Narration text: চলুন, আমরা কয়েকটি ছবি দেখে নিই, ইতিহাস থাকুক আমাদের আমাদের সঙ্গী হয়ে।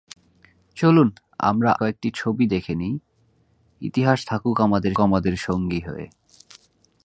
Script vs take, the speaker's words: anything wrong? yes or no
no